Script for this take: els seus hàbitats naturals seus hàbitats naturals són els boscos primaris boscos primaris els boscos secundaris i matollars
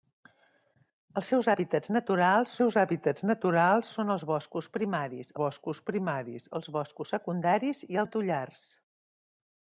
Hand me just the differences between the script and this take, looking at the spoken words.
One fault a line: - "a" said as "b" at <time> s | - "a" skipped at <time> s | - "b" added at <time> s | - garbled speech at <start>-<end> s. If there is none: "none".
none